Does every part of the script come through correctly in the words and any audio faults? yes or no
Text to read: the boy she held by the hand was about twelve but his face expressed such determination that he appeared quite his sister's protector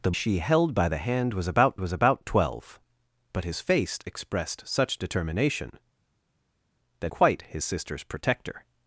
no